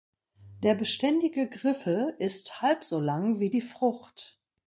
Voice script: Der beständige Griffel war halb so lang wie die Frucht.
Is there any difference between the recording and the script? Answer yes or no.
yes